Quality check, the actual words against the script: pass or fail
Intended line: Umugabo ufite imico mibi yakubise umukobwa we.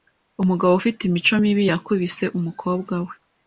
pass